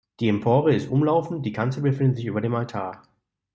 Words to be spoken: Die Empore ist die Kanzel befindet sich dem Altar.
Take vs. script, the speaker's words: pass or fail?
fail